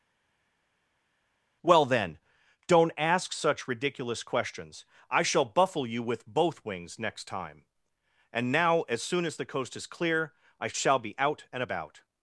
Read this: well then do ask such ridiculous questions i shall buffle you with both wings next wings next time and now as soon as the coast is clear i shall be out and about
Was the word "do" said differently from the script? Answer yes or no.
yes